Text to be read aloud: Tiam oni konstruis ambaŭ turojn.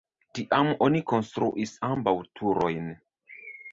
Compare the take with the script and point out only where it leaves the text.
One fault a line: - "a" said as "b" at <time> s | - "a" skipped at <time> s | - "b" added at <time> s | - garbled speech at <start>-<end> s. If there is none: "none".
none